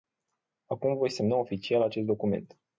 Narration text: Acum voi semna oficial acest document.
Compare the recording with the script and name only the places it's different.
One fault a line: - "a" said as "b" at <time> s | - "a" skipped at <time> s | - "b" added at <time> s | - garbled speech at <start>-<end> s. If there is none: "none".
none